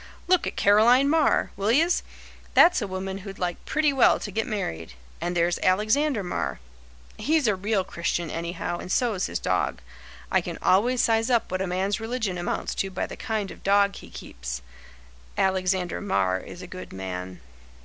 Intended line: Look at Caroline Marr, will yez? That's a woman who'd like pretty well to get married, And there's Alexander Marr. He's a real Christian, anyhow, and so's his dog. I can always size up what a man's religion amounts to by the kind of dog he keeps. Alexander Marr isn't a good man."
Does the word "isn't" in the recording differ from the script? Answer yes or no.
yes